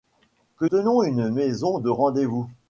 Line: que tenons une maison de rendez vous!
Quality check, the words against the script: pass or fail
pass